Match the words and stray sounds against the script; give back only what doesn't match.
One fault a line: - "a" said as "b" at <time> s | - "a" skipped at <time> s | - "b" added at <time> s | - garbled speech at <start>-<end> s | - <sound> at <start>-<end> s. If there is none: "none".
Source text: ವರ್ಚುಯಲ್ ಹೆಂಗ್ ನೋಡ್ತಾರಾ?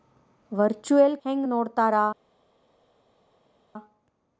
none